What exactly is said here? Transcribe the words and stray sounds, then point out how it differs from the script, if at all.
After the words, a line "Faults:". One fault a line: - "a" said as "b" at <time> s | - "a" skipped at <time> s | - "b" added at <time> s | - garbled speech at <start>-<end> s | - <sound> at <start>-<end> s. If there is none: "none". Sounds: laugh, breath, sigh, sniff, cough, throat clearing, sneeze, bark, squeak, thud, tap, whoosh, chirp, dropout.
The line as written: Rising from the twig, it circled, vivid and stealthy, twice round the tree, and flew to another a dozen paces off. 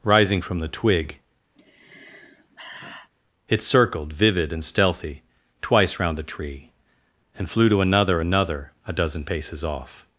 Rising from the twig, it circled, vivid and stealthy, twice round the tree, and flew to another another a dozen paces off.
Faults:
- sigh at 1.5-3.1 s
- "another" added at 8.2 s